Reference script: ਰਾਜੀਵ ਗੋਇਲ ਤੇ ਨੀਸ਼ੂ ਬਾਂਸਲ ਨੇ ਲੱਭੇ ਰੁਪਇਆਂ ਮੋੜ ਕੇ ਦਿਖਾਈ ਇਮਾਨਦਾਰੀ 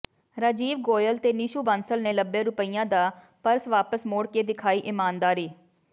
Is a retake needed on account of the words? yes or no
yes